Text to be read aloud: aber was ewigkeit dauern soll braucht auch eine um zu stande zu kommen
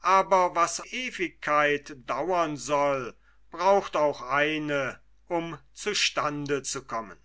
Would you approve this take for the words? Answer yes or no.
yes